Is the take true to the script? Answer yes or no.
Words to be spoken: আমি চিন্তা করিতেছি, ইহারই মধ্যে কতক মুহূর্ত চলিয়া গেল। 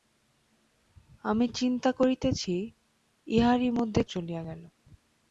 no